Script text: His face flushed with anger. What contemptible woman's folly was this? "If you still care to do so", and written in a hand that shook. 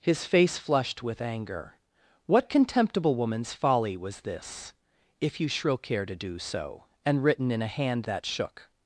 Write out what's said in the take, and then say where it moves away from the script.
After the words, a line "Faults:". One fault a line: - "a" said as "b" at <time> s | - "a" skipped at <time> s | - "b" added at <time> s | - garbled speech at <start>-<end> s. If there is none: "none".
His face flushed with anger. What contemptible woman's folly was this? "If you shrill care to do so", and written in a hand that shook.
Faults:
- "still" said as "shrill" at 5.5 s